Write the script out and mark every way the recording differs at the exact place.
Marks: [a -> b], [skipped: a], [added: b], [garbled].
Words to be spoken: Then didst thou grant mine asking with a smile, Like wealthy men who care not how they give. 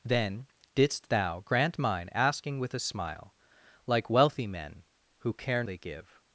Then didst thou grant mine asking with a smile, Like wealthy men who care [skipped: not how] they give.